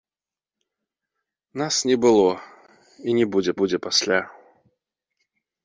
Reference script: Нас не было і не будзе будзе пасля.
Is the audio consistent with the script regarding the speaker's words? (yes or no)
yes